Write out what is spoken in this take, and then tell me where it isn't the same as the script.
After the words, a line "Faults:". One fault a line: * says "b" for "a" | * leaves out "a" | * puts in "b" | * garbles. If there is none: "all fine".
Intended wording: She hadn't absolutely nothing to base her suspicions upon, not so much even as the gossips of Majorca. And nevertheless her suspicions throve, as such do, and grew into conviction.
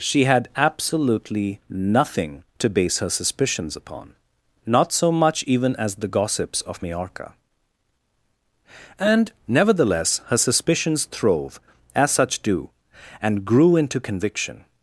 She had absolutely nothing to base her suspicions upon, not so much even as the gossips of Majorca. And nevertheless her suspicions throve, as such do, and grew into conviction.
Faults:
* says "had" for "hadn't"